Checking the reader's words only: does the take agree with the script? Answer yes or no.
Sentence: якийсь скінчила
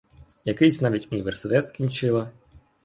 no